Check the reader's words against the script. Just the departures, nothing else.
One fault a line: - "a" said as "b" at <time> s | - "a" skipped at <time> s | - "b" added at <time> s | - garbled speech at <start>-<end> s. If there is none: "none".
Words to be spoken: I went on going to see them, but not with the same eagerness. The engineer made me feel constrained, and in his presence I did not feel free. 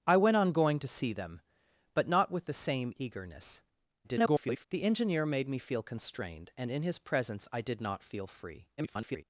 - garbled speech at 4.0-4.7 s
- garbled speech at 8.8-9.2 s